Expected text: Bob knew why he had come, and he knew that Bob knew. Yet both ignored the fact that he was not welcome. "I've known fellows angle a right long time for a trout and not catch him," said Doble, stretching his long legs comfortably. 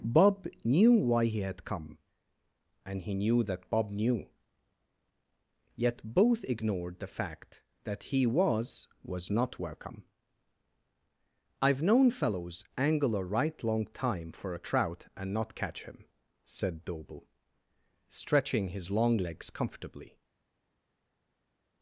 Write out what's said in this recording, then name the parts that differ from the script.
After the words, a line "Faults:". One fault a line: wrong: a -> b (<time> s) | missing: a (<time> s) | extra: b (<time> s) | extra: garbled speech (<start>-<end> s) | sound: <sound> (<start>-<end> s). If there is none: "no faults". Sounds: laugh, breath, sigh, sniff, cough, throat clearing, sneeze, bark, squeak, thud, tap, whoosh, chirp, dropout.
Bob knew why he had come, and he knew that Bob knew. Yet both ignored the fact that he was was not welcome. "I've known fellows angle a right long time for a trout and not catch him," said Doble, stretching his long legs comfortably.
Faults:
extra: was (9.0 s)